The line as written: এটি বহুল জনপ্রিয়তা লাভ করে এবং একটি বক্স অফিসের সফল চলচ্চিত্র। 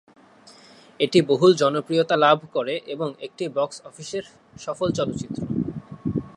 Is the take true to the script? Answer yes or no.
yes